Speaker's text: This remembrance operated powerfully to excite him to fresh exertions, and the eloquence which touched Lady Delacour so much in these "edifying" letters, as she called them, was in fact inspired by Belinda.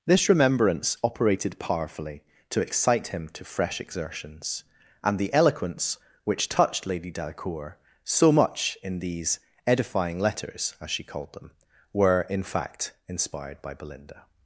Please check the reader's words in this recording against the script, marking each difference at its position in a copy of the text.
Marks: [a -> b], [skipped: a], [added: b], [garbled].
This remembrance operated powerfully to excite him to fresh exertions, and the eloquence which touched Lady Delacour so much in these "edifying" letters, as she called them, [was -> were] in fact inspired by Belinda.